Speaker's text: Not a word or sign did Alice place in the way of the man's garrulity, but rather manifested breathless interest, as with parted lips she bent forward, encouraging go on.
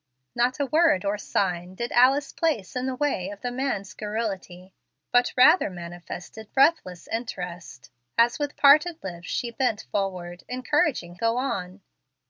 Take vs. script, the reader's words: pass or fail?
pass